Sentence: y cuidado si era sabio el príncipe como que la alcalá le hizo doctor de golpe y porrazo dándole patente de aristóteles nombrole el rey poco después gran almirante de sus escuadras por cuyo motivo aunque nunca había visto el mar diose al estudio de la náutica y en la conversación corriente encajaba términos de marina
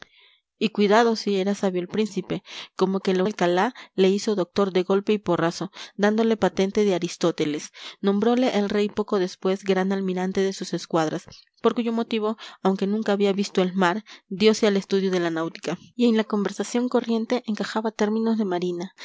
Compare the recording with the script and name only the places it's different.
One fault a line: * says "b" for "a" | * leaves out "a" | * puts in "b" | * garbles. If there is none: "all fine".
all fine